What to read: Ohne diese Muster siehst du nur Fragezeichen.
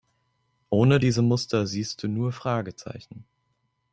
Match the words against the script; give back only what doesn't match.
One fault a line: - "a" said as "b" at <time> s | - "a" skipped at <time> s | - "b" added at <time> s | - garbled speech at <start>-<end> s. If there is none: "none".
none